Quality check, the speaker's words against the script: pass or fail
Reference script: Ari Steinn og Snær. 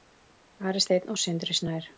fail